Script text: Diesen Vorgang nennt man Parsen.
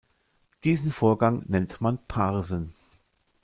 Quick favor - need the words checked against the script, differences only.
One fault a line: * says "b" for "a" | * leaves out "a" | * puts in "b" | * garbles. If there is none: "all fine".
all fine